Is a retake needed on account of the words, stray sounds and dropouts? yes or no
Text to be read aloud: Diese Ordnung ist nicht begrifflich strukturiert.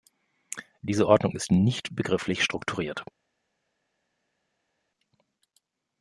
no